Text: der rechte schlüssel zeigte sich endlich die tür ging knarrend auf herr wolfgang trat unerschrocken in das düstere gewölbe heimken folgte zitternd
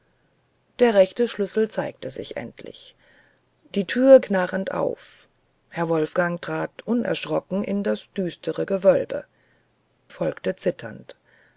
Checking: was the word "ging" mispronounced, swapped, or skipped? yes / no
yes